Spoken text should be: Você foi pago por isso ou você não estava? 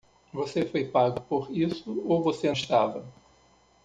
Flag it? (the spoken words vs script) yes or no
yes